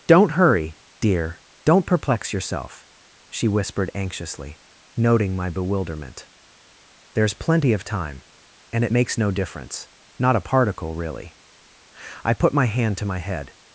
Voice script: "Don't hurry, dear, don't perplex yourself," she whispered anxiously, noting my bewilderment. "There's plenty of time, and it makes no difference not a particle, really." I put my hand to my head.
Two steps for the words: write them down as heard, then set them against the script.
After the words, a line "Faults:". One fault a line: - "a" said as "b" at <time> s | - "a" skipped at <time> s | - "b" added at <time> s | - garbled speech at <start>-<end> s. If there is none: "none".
"Don't hurry, dear, don't perplex yourself," she whispered anxiously, noting my bewilderment. "There's plenty of time, and it makes no difference not a particle, really." I put my hand to my head.
Faults:
none